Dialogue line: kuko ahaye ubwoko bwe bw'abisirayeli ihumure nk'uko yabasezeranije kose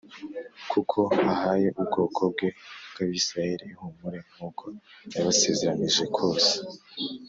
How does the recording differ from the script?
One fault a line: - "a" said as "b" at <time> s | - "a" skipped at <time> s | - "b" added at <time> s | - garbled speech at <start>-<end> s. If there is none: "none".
none